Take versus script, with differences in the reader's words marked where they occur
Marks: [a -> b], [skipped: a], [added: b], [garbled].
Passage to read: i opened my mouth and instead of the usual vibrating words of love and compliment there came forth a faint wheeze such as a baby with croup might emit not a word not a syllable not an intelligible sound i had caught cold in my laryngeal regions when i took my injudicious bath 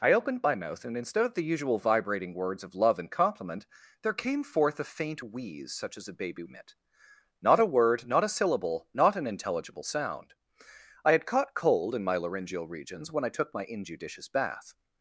i opened my mouth and instead of the usual vibrating words of love and compliment there came forth a faint wheeze such as a baby [skipped: with croup might] emit not a word not a syllable not an intelligible sound i had caught cold in my laryngeal regions when i took my injudicious bath